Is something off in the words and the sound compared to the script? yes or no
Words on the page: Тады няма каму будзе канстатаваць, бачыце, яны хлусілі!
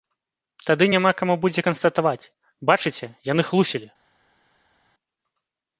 no